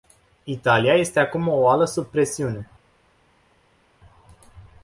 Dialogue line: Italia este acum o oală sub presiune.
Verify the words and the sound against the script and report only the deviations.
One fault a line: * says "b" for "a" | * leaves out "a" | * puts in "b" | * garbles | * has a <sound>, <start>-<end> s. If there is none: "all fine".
all fine